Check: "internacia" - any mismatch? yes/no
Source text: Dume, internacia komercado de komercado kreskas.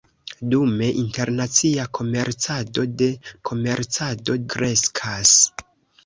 no